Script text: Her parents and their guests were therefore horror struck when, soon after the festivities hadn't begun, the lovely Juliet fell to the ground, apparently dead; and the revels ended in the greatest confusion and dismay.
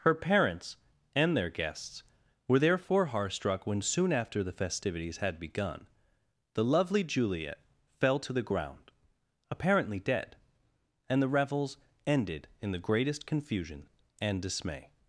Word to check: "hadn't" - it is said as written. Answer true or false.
false